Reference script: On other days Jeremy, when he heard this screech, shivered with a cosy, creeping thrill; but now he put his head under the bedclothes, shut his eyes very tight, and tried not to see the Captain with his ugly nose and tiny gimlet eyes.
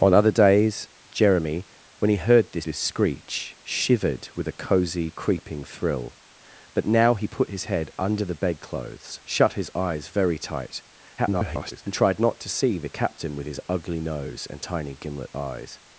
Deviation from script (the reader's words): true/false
true